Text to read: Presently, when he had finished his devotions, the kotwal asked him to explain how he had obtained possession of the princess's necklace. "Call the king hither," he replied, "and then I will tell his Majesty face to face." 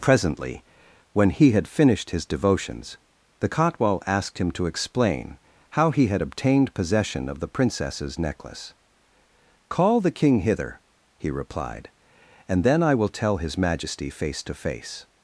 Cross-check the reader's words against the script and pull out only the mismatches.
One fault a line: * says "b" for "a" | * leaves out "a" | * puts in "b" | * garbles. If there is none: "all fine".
all fine